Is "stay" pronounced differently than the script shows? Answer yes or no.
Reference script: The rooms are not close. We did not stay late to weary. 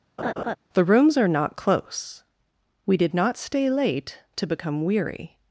no